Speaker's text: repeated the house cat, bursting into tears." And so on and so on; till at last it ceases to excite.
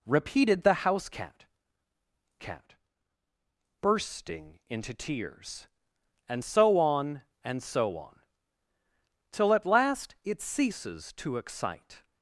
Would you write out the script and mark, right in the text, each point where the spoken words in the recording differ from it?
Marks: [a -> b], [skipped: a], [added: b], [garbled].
repeated the house cat, [added: cat] bursting into tears." And so on and so on; till at last it ceases to excite.